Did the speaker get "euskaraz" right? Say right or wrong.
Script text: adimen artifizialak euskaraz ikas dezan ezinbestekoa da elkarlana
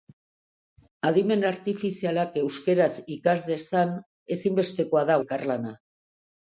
right